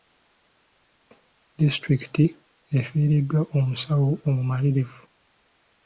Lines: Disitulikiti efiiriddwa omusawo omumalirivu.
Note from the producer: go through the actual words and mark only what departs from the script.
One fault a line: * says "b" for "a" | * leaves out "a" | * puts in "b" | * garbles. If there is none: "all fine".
all fine